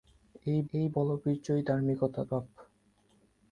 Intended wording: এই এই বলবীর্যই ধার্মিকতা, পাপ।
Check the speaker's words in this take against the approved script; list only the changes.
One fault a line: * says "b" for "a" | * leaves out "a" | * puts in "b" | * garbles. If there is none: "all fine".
all fine